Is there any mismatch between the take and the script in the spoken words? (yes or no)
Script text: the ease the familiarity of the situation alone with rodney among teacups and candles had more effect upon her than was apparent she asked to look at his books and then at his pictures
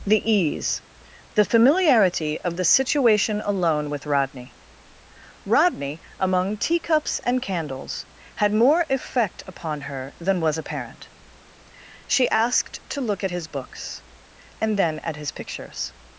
yes